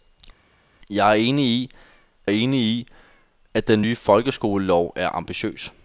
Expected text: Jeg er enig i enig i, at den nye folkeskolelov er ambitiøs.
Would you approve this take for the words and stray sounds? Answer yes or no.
yes